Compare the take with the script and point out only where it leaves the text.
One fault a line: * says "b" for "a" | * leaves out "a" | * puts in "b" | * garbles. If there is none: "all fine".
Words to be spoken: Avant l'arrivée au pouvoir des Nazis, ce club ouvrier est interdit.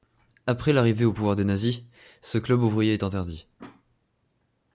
* says "Après" for "Avant"